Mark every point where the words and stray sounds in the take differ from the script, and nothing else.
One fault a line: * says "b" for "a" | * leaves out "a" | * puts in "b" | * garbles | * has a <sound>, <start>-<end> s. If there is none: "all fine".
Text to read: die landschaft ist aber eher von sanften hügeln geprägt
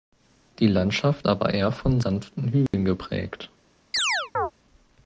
* leaves out "ist"
* has a dropout, 2.7-2.7 s
* has a chirp, 3.9-4.5 s